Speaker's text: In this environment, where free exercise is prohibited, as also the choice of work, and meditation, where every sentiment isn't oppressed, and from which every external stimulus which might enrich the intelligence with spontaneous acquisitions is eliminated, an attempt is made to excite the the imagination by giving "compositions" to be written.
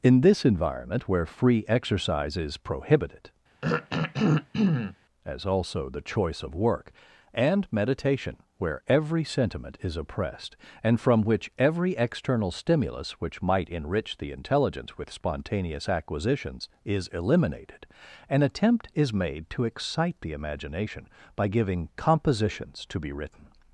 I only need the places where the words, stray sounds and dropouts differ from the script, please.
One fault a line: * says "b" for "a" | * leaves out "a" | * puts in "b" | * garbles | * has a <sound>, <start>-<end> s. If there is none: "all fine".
* has a throat clearing, 3.6-5.0 s
* says "is" for "isn't"
* leaves out "the"